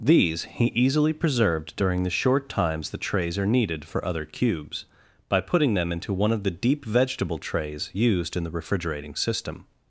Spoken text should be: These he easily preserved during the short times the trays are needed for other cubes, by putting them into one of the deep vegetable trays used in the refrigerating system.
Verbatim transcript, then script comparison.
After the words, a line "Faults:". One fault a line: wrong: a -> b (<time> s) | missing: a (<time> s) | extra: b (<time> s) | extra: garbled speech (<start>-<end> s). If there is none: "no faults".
These he easily preserved during the short times the trays are needed for other cubes, by putting them into one of the deep vegetable trays used in the refrigerating system.
Faults:
no faults